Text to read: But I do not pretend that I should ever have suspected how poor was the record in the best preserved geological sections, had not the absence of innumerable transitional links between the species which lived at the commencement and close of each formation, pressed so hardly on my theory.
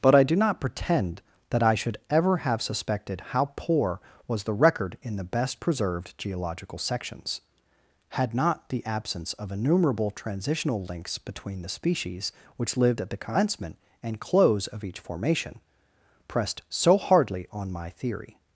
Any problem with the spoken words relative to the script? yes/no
no